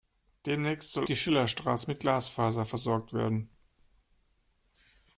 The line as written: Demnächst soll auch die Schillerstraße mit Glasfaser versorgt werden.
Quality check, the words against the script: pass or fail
fail